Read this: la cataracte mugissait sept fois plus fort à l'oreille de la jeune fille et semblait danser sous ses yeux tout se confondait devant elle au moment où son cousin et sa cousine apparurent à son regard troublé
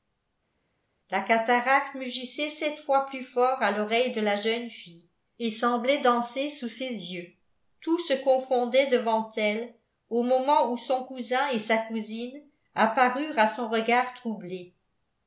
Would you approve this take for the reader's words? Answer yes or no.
yes